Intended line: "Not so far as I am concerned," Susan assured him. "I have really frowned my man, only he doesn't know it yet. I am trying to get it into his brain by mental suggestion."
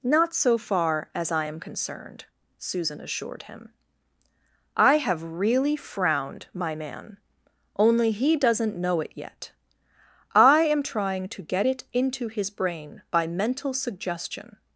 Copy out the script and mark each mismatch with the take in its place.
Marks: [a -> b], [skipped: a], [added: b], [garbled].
"Not so far as I am concerned," Susan assured him. "I have really frowned my man, only he doesn't know it yet. I am trying to get it into his brain by mental suggestion."